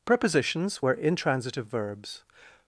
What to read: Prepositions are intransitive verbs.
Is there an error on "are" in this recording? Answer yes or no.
yes